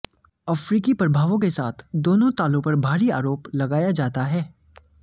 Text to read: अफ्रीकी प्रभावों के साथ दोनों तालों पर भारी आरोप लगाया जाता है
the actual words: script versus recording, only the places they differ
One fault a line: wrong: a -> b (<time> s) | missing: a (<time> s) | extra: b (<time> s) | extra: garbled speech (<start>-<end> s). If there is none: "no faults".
no faults